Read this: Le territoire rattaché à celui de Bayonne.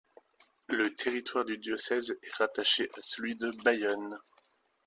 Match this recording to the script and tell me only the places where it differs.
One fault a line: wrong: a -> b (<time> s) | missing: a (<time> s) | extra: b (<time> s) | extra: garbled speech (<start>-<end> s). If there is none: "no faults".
extra: du diocèse est (1.4 s)